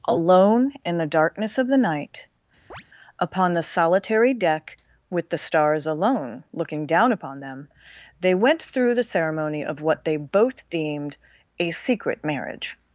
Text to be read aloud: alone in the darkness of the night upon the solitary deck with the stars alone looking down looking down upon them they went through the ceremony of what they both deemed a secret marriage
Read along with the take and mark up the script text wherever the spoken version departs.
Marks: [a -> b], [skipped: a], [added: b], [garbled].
alone in the darkness of the night upon the solitary deck with the stars alone looking down [skipped: looking down] upon them they went through the ceremony of what they both deemed a secret marriage